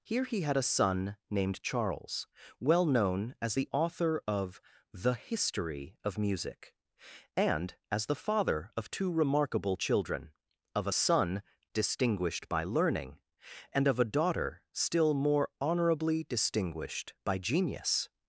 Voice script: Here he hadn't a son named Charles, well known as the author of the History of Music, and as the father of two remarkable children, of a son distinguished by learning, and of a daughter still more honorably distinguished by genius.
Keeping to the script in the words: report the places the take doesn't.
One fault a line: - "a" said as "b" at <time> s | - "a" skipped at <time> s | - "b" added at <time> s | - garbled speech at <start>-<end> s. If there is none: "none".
- "hadn't" said as "had" at 0.4 s